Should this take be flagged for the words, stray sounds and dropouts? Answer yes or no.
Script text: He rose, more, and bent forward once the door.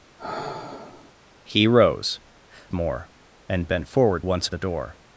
yes